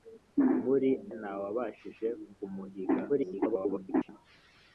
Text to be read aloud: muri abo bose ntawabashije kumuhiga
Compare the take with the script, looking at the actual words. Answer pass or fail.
fail